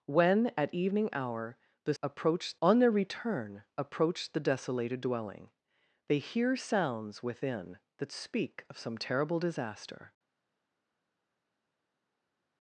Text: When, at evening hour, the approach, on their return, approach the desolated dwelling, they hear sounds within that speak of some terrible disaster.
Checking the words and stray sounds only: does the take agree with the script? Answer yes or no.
yes